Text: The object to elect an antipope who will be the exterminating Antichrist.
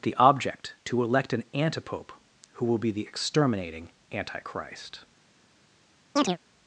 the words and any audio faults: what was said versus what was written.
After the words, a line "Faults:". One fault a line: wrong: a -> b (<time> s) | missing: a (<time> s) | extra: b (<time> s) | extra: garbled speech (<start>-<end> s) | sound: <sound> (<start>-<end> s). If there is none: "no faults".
The object to elect an antipope who will be the exterminating Antichrist.
Faults:
sound: chirp (6.2-6.4 s)